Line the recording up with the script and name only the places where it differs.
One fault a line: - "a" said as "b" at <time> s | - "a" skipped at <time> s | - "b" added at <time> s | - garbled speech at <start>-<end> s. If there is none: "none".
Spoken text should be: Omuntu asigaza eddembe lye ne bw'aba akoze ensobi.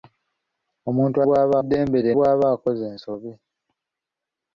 - "asigaza" said as "bw'aba" at 1.2 s
- "ne" skipped at 2.1 s